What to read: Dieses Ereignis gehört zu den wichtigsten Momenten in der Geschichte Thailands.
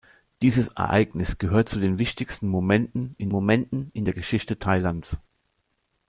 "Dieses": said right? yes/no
yes